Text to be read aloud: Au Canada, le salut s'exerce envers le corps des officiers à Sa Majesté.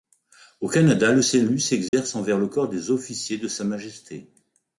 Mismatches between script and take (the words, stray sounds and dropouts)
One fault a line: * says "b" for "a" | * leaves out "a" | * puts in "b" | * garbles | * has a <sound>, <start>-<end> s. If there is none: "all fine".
* has a dropout, 1.9-1.9 s
* says "de" for "à"